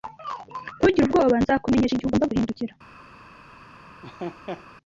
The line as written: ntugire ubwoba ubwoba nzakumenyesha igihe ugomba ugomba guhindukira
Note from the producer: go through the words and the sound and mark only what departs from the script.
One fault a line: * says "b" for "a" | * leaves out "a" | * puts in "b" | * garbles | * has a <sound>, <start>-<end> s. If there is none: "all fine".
* leaves out "ubwoba"
* leaves out "ugomba"
* has a laugh, 4.0-4.7 s